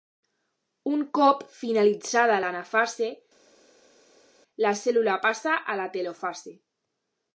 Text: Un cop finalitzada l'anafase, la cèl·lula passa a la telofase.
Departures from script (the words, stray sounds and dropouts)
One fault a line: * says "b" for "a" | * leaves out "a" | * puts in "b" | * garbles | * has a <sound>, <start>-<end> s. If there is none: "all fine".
all fine